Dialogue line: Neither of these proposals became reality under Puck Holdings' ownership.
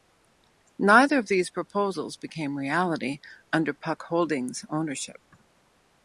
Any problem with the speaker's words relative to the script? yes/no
no